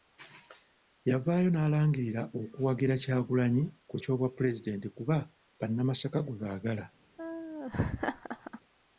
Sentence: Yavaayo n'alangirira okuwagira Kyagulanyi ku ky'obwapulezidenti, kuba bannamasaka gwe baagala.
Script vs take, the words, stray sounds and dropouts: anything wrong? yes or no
yes